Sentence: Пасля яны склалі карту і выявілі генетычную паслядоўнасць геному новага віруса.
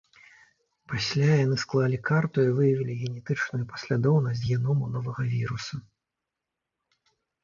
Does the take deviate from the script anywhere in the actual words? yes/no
no